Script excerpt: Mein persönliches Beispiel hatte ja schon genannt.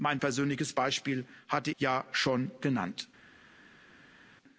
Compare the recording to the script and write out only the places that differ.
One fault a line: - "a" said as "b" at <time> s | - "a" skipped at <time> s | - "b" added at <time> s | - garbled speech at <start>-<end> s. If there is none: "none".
none